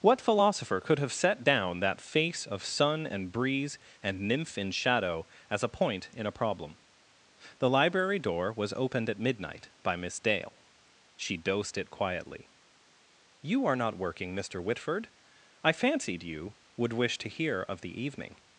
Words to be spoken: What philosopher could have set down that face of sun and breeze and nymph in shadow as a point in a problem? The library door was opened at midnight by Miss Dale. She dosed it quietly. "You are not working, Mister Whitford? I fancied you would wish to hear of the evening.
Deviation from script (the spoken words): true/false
false